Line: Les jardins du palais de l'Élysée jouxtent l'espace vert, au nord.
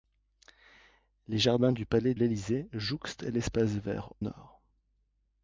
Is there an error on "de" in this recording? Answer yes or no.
yes